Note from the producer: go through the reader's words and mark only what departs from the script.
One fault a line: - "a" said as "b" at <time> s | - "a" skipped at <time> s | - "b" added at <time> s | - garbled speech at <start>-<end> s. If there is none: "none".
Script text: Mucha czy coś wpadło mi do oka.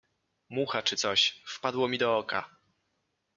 none